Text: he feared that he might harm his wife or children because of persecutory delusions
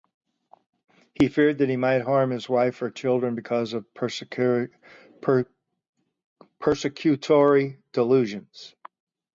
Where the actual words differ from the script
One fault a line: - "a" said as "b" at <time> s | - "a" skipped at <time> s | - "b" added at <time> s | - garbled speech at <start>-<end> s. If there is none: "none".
none